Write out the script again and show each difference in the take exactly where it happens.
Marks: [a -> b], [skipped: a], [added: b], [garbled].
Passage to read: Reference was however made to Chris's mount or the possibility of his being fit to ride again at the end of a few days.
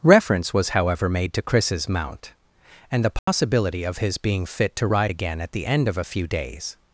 Reference was however made to Chris's mount [or -> and] the possibility of his being fit to ride again at the end of a few days.